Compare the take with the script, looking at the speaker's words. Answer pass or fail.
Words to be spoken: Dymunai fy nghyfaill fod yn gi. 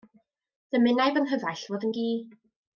pass